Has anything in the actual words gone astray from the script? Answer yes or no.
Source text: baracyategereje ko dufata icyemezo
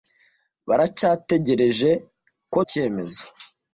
yes